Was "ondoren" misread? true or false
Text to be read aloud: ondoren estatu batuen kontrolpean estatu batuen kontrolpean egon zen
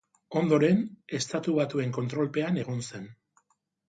false